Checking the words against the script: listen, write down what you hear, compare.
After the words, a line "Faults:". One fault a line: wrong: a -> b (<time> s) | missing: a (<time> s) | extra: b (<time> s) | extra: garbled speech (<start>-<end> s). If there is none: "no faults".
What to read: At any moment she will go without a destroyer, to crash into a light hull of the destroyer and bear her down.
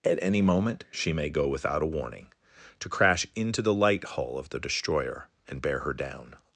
At any moment she may go without a warning, to crash into the light hull of the destroyer and bear her down.
Faults:
wrong: will -> may (1.1 s)
wrong: destroyer -> warning (1.9 s)
wrong: a -> the (3.6 s)